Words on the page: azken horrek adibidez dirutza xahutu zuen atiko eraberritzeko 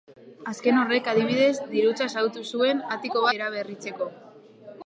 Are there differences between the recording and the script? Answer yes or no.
no